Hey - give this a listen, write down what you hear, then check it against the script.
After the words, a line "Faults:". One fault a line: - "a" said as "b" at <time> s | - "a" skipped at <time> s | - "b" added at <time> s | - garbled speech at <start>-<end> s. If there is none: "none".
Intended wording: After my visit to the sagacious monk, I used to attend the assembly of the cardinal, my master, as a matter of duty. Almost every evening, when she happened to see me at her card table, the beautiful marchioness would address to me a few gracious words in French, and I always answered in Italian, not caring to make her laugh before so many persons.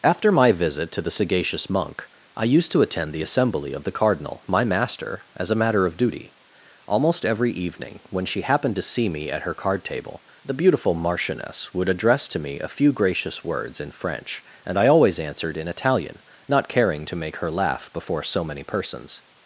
After my visit to the sagacious monk, I used to attend the assembly of the cardinal, my master, as a matter of duty. Almost every evening, when she happened to see me at her card table, the beautiful marchioness would address to me a few gracious words in French, and I always answered in Italian, not caring to make her laugh before so many persons.
Faults:
none